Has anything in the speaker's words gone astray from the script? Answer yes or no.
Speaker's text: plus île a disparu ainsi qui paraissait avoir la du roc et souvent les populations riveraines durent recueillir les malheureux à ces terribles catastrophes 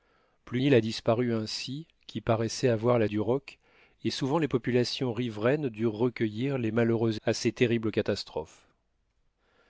no